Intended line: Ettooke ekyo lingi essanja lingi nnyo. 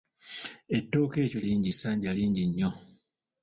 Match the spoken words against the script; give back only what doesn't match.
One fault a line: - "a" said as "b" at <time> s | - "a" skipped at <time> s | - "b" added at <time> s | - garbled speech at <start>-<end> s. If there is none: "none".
none